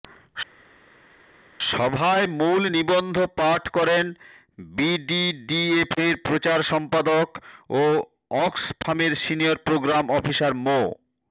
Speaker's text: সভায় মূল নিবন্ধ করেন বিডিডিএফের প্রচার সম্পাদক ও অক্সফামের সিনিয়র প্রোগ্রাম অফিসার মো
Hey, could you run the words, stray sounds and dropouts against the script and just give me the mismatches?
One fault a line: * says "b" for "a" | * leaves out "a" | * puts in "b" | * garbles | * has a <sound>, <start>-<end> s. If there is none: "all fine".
* puts in "পাঠ"